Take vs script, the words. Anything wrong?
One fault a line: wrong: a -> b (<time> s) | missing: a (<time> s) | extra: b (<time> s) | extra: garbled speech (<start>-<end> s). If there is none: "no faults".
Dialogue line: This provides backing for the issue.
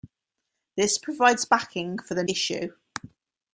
no faults